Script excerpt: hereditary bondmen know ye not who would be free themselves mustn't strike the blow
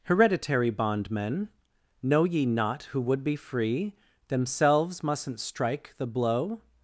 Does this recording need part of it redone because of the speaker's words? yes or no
no